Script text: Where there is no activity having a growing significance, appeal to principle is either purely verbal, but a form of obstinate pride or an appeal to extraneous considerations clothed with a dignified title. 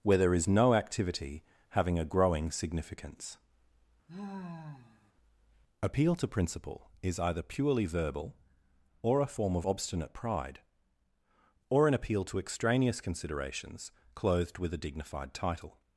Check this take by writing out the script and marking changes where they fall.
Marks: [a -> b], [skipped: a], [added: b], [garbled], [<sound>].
Where there is no activity having a growing significance, [sigh] appeal to principle is either purely verbal, [but -> or] a form of obstinate pride or an appeal to extraneous considerations clothed with a dignified title.